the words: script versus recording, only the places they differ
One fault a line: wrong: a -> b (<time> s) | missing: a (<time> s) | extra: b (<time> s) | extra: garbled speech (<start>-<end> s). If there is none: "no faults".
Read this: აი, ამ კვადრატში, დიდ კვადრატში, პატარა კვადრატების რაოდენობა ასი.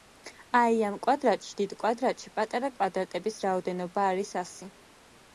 extra: არის (4.1 s)